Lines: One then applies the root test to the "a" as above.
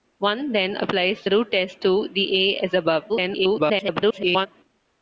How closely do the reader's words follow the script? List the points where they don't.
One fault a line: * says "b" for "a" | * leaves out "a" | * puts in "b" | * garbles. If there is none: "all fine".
* garbles